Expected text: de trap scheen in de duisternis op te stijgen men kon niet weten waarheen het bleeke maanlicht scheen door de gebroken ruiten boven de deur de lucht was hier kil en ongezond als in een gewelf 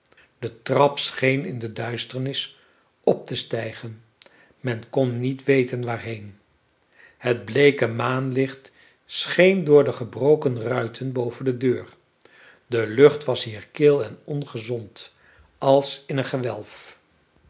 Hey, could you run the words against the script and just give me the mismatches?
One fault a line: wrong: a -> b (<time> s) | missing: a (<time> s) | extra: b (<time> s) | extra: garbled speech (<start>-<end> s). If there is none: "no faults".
no faults